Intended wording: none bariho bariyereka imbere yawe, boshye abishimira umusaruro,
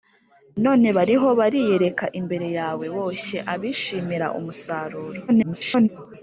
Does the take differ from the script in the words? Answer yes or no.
yes